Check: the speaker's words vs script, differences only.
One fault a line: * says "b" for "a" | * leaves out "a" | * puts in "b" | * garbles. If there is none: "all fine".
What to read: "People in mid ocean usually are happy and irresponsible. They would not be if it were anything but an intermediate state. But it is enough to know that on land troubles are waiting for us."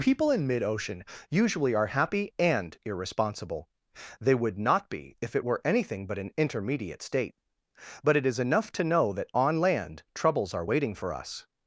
all fine